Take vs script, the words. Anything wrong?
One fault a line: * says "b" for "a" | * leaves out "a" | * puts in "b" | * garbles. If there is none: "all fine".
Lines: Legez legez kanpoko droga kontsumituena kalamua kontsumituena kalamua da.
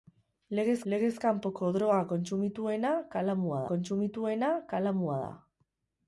all fine